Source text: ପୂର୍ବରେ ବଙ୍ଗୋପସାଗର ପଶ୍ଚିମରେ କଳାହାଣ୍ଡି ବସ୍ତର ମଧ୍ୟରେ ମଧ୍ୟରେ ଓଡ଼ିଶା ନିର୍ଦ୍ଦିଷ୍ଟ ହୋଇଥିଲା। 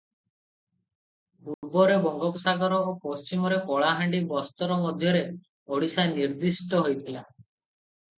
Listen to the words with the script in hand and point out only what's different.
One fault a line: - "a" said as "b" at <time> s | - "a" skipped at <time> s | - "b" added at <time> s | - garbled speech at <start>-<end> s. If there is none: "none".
- "ଓ" added at 2.8 s
- "ମଧ୍ୟରେ" skipped at 5.2 s